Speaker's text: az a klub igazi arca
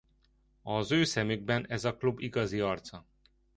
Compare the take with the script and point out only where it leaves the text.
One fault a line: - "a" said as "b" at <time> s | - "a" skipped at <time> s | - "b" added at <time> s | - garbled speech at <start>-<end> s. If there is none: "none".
- "ő szemükben ez" added at 0.9 s